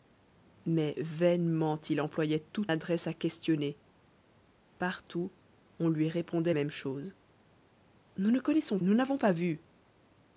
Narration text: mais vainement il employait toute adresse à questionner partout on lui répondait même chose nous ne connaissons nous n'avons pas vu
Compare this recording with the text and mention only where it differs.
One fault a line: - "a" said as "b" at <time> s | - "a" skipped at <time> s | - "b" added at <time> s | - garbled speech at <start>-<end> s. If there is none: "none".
none